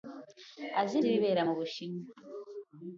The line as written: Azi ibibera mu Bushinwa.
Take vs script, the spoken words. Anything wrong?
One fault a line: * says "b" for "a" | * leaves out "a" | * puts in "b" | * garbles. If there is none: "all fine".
all fine